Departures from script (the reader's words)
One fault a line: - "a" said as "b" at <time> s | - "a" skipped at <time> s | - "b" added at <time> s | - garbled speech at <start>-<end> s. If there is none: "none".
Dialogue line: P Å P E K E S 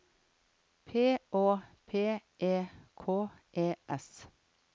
none